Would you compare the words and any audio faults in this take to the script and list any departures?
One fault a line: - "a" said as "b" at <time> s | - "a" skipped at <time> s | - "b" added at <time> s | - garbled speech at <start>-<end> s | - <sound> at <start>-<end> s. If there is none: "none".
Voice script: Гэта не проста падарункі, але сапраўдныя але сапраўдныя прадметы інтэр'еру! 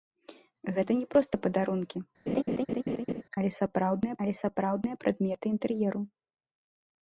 - laugh at 2.3-3.2 s